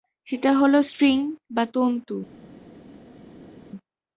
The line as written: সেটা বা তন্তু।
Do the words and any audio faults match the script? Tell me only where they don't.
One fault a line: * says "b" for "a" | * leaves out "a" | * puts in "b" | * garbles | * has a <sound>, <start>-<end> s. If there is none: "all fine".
* puts in "হলো স্ট্রিং"